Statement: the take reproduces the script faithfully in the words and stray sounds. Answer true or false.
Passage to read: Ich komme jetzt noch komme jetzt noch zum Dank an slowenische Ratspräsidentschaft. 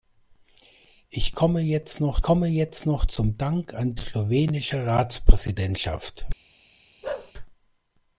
false